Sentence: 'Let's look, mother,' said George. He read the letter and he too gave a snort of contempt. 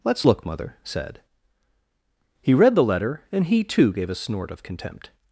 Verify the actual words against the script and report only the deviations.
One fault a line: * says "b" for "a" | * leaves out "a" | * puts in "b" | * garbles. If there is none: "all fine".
* leaves out "George"